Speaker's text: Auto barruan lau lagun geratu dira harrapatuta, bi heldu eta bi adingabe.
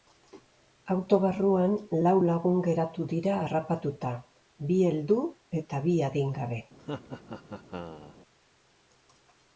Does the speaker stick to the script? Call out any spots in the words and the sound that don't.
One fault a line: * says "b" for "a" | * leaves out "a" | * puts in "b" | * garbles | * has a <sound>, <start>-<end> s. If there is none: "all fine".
* has a laugh, 6.8-8.2 s